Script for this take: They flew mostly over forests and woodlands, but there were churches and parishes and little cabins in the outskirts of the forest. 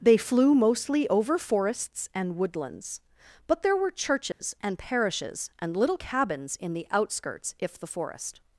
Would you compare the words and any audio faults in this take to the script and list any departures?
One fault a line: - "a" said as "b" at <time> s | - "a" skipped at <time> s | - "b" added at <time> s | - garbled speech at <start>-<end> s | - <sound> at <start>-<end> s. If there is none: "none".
- dropout at 4.3-4.4 s
- "of" said as "if" at 7.6 s